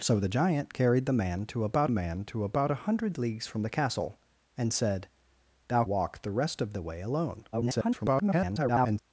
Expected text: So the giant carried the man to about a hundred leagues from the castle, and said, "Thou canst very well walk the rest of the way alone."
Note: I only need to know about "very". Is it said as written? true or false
false